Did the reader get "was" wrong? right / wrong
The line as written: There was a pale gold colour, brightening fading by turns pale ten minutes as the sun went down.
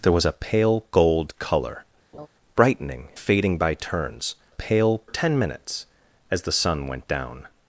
right